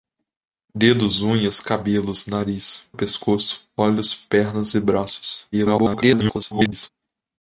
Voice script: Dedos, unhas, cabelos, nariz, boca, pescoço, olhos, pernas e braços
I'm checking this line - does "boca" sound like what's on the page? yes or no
no